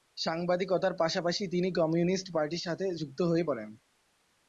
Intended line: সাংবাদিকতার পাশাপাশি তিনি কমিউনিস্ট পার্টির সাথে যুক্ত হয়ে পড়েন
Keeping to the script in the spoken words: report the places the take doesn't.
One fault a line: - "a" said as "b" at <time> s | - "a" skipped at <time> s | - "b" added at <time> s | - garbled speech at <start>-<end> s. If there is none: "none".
none